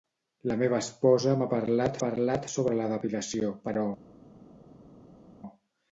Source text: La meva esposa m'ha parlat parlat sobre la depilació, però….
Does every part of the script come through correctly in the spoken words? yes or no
yes